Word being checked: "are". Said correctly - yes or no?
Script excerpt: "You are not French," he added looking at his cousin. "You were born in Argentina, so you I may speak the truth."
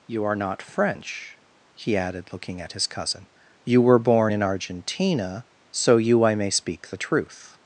yes